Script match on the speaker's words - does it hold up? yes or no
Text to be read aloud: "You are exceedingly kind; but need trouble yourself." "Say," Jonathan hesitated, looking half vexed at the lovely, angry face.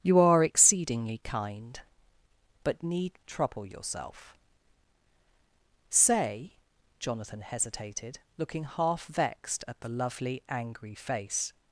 yes